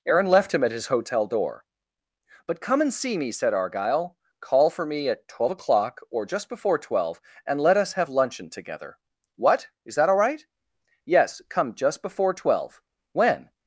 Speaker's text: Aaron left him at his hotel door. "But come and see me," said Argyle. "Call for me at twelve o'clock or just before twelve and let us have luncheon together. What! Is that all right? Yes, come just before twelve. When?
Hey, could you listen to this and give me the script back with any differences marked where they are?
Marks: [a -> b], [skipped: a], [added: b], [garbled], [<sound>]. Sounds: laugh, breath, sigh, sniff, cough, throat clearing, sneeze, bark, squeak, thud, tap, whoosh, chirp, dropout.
Aaron left him at his hotel door. "But come and see me," said Argyle. "Call for me at twelve o'clock or just before twelve and let us have luncheon together. What! Is that all right? Yes, come just before twelve. When?